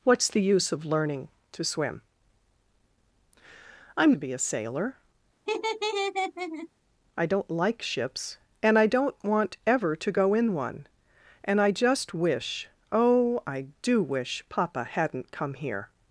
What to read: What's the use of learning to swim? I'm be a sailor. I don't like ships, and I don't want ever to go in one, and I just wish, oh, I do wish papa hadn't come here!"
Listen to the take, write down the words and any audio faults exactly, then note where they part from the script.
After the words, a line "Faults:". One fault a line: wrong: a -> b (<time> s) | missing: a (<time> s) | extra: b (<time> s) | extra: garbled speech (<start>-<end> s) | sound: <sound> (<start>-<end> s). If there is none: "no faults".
What's the use of learning to swim? I'm be a sailor. I don't like ships, and I don't want ever to go in one, and I just wish, oh, I do wish papa hadn't come here!"
Faults:
sound: laugh (5.5-6.7 s)